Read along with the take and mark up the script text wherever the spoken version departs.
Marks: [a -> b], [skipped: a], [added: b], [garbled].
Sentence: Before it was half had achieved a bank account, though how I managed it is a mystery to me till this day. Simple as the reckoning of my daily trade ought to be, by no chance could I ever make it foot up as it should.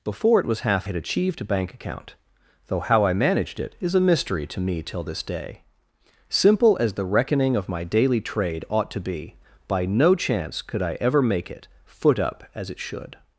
Before it was half had achieved a bank account, though how I managed it is a mystery to me till this day. Simple as the reckoning of my daily trade ought to be, by no chance could I ever make it foot up as it should.